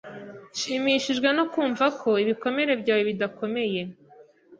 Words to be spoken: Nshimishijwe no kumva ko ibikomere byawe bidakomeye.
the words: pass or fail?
pass